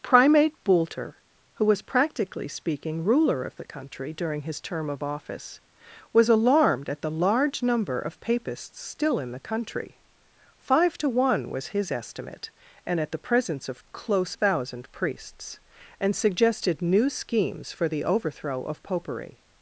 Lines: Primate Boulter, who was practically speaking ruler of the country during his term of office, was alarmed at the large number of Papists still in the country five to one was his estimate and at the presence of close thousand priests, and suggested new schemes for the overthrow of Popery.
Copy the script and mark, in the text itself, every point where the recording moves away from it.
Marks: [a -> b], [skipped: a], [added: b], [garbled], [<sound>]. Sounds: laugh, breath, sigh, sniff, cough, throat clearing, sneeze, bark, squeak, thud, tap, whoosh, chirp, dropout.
Primate Boulter, who was practically speaking ruler of the country during his term of office, was alarmed at the large number of Papists still in the country five to one was his estimate and at the presence of close thousand priests, and suggested new schemes for the overthrow of Popery.